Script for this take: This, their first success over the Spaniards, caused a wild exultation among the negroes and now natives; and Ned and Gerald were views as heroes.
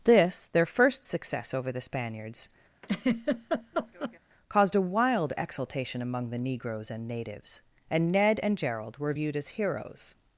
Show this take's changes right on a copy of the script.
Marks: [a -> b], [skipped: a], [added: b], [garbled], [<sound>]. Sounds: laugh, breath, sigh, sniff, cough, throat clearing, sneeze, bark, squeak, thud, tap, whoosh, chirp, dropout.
This, their first success over the Spaniards, [laugh] caused a wild exultation among the negroes and [skipped: now] natives; and Ned and Gerald were [views -> viewed] as heroes.